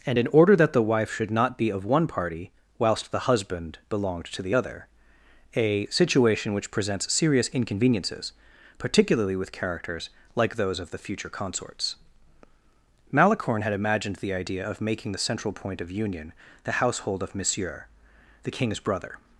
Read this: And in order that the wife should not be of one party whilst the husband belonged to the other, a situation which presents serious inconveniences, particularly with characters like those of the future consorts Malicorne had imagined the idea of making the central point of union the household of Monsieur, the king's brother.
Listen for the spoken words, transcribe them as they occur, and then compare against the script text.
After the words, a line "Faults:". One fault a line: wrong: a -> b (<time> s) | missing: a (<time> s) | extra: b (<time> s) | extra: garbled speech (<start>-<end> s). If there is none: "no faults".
And in order that the wife should not be of one party whilst the husband belonged to the other, a situation which presents serious inconveniences, particularly with characters like those of the future consorts Malicorne had imagined the idea of making the central point of union the household of Monsieur, the king's brother.
Faults:
no faults